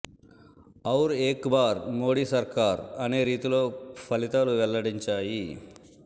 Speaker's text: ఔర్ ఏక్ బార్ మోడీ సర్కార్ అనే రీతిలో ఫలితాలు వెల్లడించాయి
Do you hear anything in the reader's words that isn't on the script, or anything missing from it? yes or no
no